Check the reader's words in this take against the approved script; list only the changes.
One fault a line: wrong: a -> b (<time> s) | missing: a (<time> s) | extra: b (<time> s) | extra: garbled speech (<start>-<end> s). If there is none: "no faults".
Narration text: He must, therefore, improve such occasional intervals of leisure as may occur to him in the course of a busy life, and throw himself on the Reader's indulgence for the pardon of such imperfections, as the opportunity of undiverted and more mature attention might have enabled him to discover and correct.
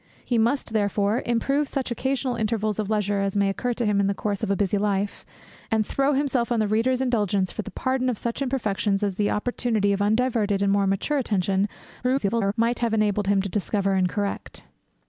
extra: garbled speech (12.0-12.5 s)